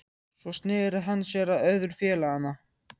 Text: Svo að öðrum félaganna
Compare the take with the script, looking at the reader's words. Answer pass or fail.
fail